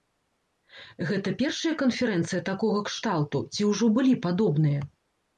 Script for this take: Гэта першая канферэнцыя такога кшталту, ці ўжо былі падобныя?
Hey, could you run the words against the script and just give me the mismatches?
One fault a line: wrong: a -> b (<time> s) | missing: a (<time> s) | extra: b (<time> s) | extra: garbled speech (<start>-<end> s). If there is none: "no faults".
no faults